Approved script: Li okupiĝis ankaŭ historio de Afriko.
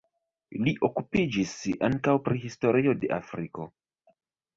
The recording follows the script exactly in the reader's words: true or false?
false